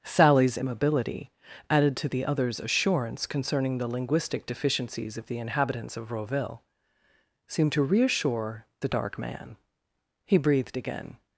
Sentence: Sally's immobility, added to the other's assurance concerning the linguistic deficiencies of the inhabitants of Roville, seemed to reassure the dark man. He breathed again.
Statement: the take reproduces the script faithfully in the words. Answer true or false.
true